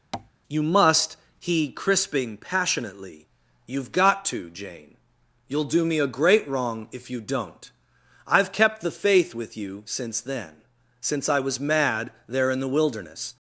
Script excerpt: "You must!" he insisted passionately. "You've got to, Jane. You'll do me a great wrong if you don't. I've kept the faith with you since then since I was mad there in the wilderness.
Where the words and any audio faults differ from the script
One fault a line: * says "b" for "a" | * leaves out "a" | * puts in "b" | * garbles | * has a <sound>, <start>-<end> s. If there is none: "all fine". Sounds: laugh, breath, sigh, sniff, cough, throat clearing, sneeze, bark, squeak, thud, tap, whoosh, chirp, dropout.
* has a tap, 0.1-0.3 s
* says "crisping" for "insisted"